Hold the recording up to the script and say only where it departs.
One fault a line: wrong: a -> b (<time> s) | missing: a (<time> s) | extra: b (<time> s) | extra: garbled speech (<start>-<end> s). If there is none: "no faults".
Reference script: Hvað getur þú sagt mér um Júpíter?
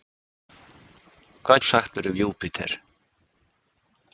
missing: getur (1.6 s)